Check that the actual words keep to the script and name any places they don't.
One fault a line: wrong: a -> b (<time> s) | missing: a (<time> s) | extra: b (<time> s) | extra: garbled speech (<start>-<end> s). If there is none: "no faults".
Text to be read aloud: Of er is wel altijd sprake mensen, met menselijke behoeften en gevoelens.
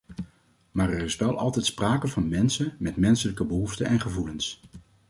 wrong: Of -> Maar (0.7 s)
extra: van (2.1 s)